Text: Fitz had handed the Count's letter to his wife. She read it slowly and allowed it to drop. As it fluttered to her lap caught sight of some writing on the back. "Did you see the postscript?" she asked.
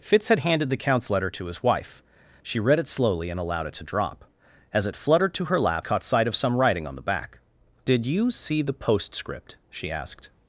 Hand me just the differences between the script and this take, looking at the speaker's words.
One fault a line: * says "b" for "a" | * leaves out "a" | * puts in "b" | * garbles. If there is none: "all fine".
all fine